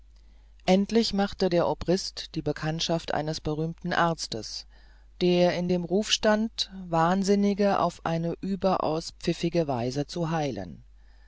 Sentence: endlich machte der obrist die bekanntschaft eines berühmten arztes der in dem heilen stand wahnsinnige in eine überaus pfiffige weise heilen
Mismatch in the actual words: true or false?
true